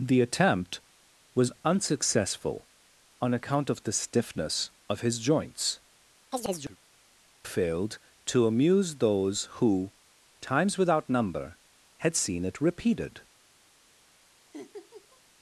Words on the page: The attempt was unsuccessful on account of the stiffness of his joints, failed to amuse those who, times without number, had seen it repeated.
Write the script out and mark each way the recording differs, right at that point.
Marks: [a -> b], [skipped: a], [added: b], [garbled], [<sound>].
The attempt was unsuccessful on account of the stiffness of his joints, [chirp] failed to amuse those who, times without number, had seen it repeated. [laugh]